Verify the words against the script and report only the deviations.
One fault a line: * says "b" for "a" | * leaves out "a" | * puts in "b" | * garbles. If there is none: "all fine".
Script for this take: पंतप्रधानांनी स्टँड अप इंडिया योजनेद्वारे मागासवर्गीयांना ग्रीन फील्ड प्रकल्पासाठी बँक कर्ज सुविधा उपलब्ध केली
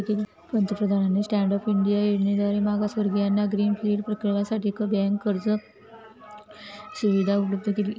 all fine